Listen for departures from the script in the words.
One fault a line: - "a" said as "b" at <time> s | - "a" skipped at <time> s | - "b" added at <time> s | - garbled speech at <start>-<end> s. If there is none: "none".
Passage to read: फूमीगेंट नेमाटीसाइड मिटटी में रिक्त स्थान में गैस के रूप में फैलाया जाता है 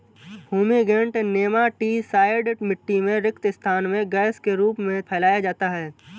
none